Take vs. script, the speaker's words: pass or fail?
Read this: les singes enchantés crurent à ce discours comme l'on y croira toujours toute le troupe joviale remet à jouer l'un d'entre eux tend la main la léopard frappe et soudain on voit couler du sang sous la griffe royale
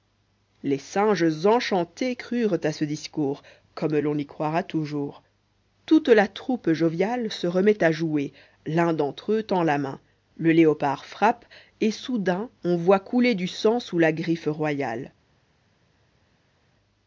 fail